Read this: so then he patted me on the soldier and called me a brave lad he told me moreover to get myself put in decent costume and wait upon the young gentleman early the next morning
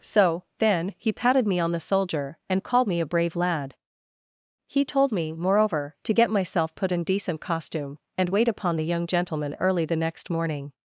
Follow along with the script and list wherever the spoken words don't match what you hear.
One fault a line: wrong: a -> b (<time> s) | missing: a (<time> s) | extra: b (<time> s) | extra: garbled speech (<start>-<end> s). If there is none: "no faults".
no faults